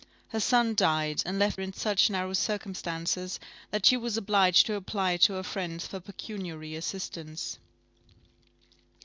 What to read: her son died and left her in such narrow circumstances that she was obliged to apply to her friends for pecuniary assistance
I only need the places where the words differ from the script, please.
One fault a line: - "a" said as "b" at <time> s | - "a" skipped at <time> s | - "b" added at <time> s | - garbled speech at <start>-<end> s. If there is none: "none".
- "her" skipped at 1.6 s